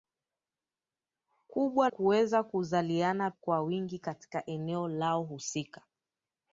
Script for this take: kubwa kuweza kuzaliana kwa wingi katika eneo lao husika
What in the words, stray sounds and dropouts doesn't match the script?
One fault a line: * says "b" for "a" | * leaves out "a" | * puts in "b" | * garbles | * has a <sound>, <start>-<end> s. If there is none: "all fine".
all fine